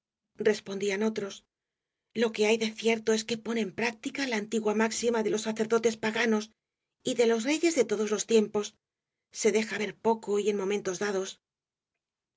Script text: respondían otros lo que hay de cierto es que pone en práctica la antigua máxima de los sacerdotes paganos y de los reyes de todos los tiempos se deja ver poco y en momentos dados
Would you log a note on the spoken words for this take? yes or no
no